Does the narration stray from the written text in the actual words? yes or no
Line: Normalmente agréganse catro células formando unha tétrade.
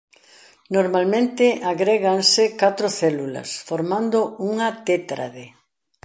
no